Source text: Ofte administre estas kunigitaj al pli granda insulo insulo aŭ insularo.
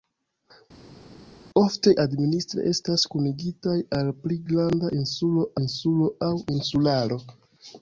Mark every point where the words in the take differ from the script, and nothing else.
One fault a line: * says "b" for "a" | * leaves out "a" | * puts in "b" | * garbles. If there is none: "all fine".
all fine